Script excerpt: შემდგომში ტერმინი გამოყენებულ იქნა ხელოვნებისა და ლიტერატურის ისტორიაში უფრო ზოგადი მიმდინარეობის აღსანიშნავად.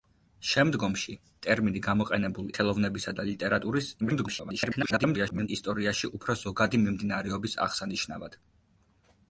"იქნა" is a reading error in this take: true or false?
true